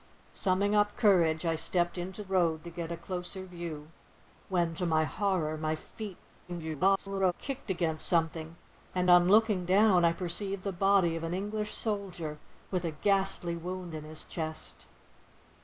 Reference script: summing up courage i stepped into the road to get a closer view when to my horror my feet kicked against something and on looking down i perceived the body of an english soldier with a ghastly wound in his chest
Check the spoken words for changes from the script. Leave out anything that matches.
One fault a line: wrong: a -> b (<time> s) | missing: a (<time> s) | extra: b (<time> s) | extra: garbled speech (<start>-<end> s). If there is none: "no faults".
missing: the (2.2 s)
extra: garbled speech (6.5-7.3 s)